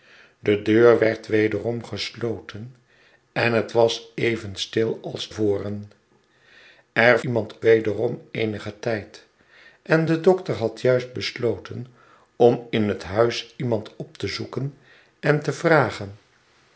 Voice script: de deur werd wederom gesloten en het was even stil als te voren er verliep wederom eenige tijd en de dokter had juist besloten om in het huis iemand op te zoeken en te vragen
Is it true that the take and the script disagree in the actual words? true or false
true